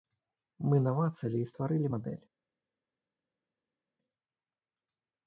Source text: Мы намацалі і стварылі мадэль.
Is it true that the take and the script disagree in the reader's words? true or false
false